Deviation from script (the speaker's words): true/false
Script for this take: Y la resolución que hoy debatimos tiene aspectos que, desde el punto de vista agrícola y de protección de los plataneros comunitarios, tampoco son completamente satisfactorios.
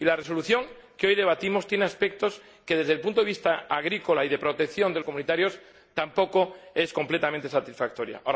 true